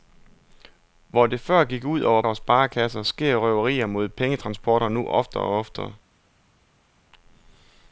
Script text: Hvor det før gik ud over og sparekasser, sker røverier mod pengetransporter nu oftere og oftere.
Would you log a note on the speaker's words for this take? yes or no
no